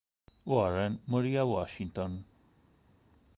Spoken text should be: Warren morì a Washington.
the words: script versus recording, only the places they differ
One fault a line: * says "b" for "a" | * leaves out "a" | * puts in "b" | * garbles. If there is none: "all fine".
all fine